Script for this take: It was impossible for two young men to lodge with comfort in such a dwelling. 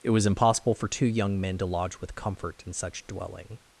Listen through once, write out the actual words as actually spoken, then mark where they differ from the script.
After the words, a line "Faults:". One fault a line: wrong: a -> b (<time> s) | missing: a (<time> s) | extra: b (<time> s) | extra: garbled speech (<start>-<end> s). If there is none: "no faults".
It was impossible for two young men to lodge with comfort in such dwelling.
Faults:
missing: a (3.0 s)